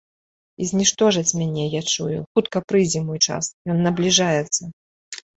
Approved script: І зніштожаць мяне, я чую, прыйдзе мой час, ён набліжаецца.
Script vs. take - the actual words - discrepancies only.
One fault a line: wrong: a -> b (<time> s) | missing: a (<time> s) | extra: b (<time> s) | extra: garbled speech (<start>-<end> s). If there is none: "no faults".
extra: хутка (2.4 s)